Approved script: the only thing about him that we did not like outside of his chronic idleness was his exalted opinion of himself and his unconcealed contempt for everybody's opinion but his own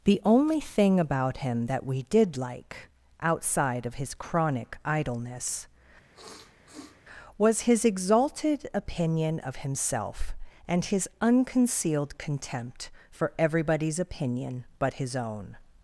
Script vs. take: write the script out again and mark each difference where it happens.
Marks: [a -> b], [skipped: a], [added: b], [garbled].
the only thing about him that we did [skipped: not] like outside of his chronic idleness was his exalted opinion of himself and his unconcealed contempt for everybody's opinion but his own